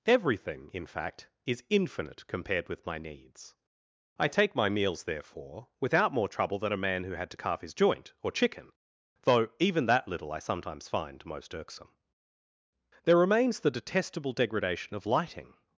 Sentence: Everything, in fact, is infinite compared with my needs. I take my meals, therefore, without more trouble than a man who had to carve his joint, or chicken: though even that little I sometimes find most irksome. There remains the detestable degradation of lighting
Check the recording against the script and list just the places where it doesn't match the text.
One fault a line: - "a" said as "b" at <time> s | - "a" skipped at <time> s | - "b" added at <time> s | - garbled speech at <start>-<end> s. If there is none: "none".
none